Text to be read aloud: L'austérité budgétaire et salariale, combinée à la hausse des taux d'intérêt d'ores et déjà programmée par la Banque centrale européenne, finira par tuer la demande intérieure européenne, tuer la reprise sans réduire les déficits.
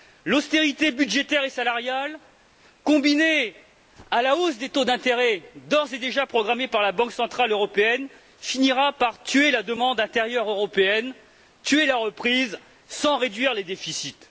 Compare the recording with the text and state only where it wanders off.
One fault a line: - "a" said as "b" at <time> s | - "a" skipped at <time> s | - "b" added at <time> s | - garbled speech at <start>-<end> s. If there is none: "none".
none